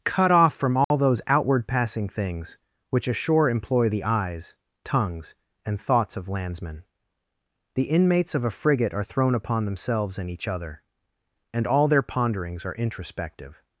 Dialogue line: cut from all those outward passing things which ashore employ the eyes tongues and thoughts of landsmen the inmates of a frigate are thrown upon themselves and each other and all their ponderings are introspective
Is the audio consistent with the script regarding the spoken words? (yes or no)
no